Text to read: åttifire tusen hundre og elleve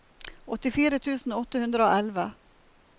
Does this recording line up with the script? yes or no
no